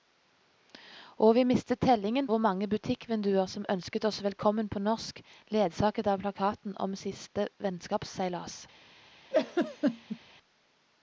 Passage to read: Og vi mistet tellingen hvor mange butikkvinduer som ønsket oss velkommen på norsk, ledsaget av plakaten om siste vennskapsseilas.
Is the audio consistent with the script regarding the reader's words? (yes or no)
yes